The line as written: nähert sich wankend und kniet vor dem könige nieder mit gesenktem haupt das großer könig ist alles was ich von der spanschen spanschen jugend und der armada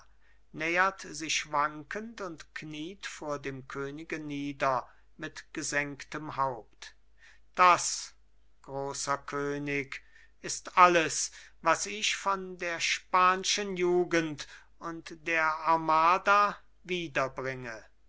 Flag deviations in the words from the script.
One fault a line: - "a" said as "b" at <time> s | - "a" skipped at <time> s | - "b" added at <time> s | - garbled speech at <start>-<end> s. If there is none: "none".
- "spanschen" skipped at 13.8 s